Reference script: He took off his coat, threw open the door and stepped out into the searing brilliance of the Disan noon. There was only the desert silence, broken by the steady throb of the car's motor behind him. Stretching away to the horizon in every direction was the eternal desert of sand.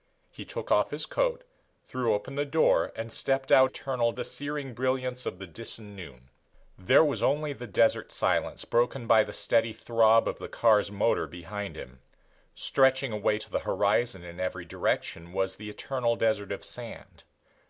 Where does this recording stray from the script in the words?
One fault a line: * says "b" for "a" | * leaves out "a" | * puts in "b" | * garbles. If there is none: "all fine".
* says "eternal" for "into"